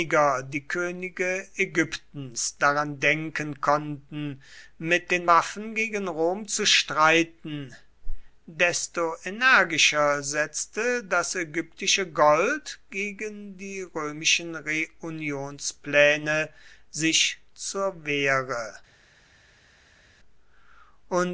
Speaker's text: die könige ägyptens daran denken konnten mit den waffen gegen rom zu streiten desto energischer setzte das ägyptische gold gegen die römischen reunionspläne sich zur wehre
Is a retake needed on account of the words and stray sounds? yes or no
no